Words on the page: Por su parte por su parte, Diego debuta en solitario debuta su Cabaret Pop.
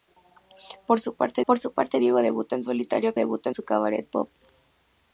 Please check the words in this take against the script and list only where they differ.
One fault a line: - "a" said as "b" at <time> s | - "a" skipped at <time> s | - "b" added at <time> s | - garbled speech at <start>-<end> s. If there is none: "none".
none